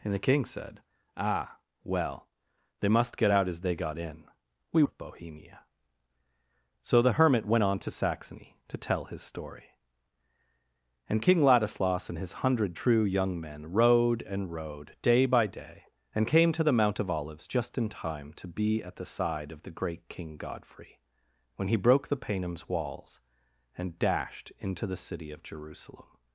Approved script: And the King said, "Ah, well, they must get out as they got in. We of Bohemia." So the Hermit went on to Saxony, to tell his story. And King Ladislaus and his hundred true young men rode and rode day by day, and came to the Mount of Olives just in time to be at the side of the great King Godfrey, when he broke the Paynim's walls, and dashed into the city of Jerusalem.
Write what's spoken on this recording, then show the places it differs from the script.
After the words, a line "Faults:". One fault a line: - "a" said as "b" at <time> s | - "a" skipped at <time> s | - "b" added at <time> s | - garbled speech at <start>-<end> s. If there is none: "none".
And the King said, "Ah, well, they must get out as they got in. We of Bohemia." So the Hermit went on to Saxony, to tell his story. And King Ladislaus and his hundred true young men rode and rode day by day, and came to the Mount of Olives just in time to be at the side of the great King Godfrey, when he broke the Paynim's walls, and dashed into the city of Jerusalem.
Faults:
none